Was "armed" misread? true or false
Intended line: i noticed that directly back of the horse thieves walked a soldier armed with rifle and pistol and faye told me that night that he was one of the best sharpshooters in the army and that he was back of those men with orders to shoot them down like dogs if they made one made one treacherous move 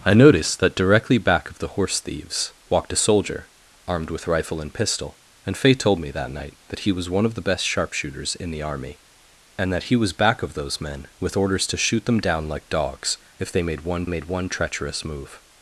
false